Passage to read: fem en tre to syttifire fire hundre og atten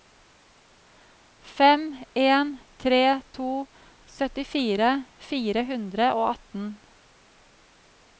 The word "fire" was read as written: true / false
true